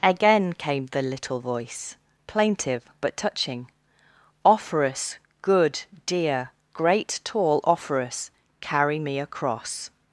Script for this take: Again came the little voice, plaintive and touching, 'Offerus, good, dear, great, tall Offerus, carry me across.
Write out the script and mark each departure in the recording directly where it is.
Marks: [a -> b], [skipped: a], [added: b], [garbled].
Again came the little voice, plaintive [and -> but] touching, 'Offerus, good, dear, great, tall Offerus, carry me across.